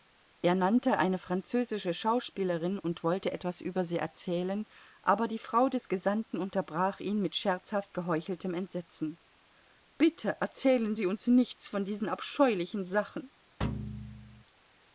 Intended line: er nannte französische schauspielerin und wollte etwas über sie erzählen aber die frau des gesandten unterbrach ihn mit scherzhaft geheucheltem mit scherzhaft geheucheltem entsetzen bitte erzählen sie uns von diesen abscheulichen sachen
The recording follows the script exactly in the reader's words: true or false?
false